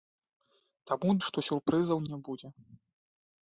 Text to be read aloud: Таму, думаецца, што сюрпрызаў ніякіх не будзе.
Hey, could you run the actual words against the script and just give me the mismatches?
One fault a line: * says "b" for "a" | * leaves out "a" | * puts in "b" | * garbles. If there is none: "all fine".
* leaves out "думаецца"
* leaves out "ніякіх"